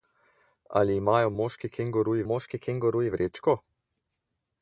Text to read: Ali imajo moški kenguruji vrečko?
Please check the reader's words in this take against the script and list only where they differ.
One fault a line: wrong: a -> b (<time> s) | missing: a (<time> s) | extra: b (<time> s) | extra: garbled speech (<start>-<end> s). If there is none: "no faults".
extra: moški kenguruji (2.2 s)